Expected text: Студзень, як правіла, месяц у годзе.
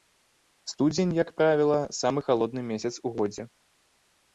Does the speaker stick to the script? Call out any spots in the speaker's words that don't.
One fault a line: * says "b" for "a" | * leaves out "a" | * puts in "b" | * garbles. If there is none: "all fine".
* puts in "самы халодны"